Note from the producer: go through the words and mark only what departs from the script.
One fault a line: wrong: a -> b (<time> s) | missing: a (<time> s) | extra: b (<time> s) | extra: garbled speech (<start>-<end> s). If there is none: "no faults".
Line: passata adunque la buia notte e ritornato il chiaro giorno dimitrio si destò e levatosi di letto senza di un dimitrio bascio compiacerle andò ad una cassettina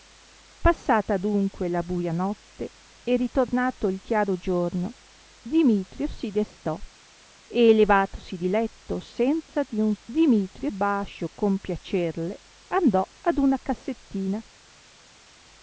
no faults